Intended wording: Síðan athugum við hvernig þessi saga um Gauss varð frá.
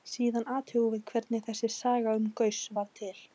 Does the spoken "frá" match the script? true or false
false